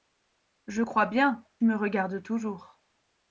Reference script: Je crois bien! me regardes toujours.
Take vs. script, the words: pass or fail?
pass